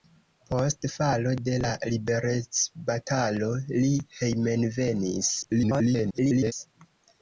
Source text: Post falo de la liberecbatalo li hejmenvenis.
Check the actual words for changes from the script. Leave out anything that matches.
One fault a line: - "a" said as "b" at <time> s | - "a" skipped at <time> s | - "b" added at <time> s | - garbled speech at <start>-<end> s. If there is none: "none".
- garbled speech at 5.4-6.5 s